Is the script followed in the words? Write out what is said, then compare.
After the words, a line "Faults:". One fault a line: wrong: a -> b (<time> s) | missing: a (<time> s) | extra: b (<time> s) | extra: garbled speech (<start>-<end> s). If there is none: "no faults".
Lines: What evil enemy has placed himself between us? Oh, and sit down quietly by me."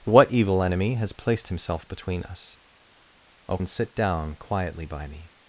What evil enemy has placed himself between us? Oh, and sit down quietly by me."
Faults:
no faults